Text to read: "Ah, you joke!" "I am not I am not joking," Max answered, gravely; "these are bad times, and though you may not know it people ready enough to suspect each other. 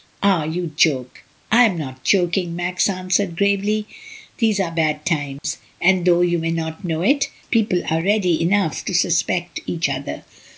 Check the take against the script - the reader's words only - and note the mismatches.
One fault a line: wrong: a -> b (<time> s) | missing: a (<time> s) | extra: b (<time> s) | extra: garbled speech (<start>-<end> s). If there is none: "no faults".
missing: I am not (2.0 s)
extra: are (7.9 s)